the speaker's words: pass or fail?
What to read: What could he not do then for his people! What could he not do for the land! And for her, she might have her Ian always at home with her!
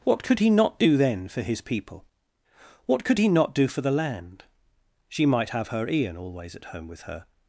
fail